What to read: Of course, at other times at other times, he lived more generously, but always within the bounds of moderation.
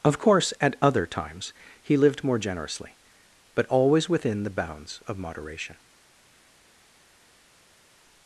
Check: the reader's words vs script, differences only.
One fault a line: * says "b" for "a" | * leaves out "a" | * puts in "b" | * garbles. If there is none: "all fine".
* leaves out "at other times"